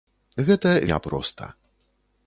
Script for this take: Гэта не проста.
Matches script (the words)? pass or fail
pass